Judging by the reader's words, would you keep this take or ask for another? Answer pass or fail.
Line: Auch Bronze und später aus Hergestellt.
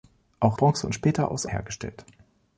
pass